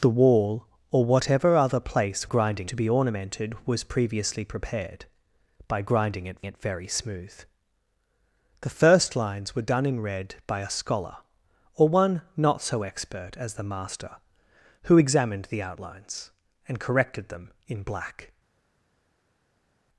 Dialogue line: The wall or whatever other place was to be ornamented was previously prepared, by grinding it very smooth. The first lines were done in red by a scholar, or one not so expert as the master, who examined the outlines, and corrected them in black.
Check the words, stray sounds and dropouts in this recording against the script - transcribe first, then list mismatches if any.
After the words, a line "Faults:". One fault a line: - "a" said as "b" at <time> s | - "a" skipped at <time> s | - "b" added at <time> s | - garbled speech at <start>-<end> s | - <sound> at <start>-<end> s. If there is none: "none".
The wall or whatever other place grinding to be ornamented was previously prepared, by grinding it it very smooth. The first lines were done in red by a scholar, or one not so expert as the master, who examined the outlines, and corrected them in black.
Faults:
- "was" said as "grinding" at 2.2 s
- "it" added at 6.5 s